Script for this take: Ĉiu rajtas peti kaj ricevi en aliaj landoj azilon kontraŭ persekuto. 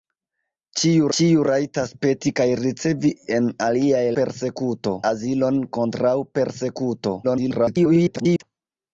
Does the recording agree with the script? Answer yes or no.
no